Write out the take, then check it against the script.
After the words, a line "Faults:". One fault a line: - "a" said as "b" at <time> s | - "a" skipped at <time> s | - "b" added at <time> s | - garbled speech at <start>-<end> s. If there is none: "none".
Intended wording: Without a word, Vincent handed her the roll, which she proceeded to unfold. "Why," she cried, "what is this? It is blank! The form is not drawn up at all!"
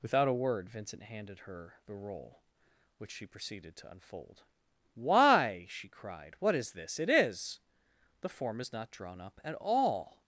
Without a word, Vincent handed her the roll, which she proceeded to unfold. "Why," she cried, "what is this? It is! The form is not drawn up at all!"
Faults:
- "blank" skipped at 7.6 s